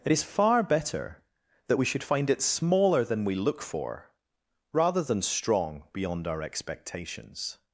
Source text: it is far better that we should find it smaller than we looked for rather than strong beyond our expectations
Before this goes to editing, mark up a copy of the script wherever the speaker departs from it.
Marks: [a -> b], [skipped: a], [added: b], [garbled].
it is far better that we should find it smaller than we [looked -> look] for rather than strong beyond our expectations